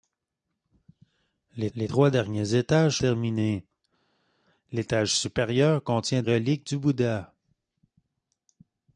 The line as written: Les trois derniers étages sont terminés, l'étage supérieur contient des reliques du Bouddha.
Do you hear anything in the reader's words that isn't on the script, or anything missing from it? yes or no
yes